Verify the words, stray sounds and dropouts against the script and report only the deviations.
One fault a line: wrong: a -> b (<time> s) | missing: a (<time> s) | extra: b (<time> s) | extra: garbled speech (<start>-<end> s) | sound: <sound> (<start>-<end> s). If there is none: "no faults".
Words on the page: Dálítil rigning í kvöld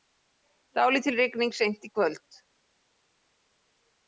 extra: seint (1.6 s)